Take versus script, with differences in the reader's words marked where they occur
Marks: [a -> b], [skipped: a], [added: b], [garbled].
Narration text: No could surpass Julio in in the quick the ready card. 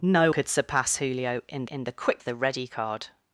No could surpass Julio in in the quick the ready card.